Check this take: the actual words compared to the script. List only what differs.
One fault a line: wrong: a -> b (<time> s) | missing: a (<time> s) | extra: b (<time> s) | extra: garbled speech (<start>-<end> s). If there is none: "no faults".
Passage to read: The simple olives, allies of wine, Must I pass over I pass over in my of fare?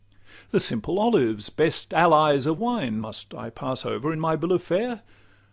extra: best (1.5 s)
missing: I pass over (4.1 s)
extra: bill (4.3 s)